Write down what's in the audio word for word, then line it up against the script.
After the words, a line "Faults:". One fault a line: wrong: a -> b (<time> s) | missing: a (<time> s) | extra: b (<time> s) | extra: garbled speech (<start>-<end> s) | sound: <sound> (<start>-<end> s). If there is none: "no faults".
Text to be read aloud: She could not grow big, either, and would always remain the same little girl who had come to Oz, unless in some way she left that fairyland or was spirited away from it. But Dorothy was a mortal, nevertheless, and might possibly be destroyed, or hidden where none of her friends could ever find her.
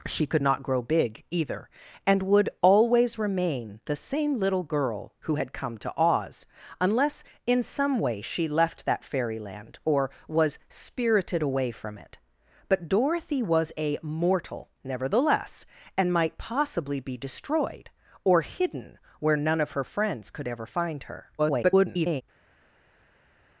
She could not grow big, either, and would always remain the same little girl who had come to Oz, unless in some way she left that fairyland or was spirited away from it. But Dorothy was a mortal, nevertheless, and might possibly be destroyed, or hidden where none of her friends could ever find her. [garbled]
Faults:
extra: garbled speech (21.4-22.2 s)